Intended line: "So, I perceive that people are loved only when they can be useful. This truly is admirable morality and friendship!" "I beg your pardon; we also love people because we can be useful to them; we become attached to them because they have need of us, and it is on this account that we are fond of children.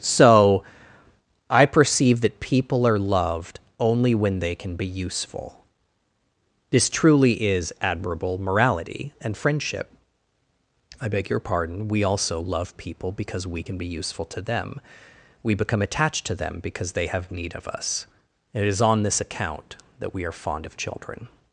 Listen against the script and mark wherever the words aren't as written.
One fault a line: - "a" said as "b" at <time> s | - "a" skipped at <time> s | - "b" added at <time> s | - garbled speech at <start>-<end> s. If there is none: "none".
- "and" skipped at 18.1 s